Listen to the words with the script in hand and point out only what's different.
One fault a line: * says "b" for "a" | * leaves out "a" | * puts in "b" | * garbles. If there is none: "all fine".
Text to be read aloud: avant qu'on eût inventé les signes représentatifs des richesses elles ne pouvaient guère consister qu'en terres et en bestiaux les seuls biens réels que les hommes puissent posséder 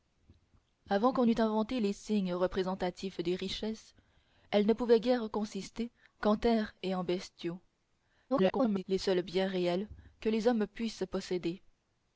* garbles